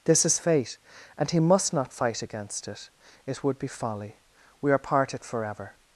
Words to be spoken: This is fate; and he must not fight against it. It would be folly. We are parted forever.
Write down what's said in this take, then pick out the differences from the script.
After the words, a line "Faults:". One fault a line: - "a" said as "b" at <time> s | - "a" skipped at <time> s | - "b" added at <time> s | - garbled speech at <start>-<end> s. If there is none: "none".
This is fate; and he must not fight against it. It would be folly. We are parted forever.
Faults:
none